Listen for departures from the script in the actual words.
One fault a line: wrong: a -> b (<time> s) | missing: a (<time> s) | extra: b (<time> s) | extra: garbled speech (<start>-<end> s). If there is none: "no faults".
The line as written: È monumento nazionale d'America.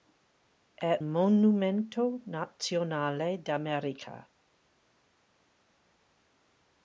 no faults